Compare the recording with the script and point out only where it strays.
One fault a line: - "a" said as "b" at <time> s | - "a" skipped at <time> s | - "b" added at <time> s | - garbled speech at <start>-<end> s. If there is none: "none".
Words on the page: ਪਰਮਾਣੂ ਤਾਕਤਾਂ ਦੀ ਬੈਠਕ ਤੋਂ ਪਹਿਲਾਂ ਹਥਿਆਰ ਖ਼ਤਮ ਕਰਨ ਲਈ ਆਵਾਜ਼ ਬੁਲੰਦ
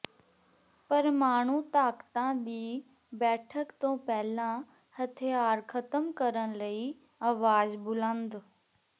none